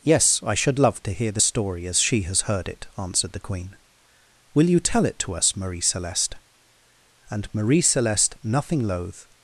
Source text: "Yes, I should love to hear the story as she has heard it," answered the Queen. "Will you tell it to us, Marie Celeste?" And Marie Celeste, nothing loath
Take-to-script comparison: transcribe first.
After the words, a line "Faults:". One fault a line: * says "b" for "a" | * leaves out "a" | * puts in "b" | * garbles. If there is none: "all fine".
"Yes, I should love to hear the story as she has heard it," answered the Queen. "Will you tell it to us, Marie Celeste?" And Marie Celeste, nothing loath
Faults:
all fine